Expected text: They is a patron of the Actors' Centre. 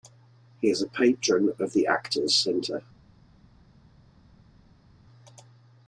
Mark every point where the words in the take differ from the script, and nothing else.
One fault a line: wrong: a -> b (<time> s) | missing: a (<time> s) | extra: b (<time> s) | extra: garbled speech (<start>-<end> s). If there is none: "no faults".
wrong: They -> He (0.6 s)